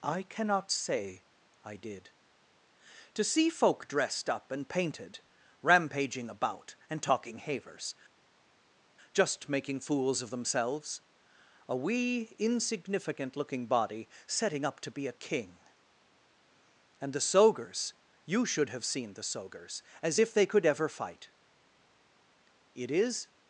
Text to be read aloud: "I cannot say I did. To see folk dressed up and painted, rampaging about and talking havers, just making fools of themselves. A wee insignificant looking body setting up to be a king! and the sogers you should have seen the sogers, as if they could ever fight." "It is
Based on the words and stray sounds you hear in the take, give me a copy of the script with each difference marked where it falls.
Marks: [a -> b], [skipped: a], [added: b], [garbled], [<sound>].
"I cannot say I did. To see folk dressed up and painted, rampaging about and talking havers, just making fools of themselves. A wee insignificant looking body setting up to be a king! and the sogers you should have seen the sogers, as if they could ever fight." "It is